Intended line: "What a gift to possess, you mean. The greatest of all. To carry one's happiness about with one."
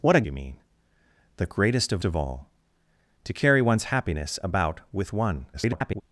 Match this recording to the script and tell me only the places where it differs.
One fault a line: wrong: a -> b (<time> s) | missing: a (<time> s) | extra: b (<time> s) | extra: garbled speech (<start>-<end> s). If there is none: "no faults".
missing: gift to possess (0.2 s)
extra: of (2.0 s)
extra: garbled speech (5.5-6.0 s)